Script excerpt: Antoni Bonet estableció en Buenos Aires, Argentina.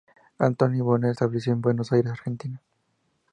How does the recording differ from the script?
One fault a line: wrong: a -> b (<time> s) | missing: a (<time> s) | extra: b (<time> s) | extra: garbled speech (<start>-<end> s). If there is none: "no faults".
no faults